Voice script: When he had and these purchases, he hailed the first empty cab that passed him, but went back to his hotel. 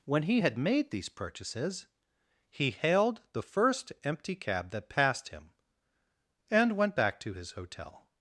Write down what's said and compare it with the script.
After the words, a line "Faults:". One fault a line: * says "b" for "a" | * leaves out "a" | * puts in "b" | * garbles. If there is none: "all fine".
When he had made these purchases, he hailed the first empty cab that passed him, and went back to his hotel.
Faults:
* says "made" for "and"
* says "and" for "but"